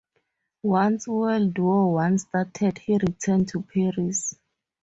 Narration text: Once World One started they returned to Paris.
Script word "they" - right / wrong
wrong